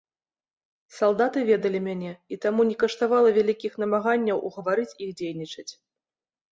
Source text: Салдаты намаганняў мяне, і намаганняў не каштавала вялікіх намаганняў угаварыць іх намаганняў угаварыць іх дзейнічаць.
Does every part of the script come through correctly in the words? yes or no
no